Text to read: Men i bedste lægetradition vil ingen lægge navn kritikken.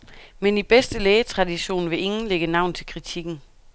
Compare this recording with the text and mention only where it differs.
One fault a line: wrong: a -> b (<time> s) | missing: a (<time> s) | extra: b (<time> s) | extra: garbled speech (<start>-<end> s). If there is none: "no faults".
extra: til (2.7 s)